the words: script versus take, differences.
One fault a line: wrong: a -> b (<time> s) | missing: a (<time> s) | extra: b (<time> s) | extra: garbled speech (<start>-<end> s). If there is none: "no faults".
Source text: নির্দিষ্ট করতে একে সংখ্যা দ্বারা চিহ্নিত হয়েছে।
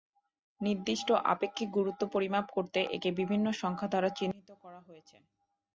extra: আপেক্ষিক গুরুত্ব পরিমাপ (1.2 s)
extra: বিভিন্ন (3.2 s)
extra: করা (4.6 s)